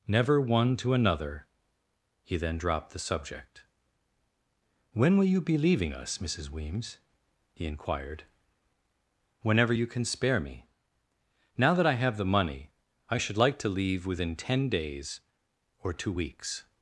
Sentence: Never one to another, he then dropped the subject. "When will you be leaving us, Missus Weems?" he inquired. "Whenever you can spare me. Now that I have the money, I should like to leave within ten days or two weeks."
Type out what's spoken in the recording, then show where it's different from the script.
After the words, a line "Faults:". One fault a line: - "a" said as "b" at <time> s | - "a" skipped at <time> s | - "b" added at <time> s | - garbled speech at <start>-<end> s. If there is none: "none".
Never one to another, he then dropped the subject. "When will you be leaving us, Missus Weems?" he inquired. "Whenever you can spare me. Now that I have the money, I should like to leave within ten days or two weeks."
Faults:
none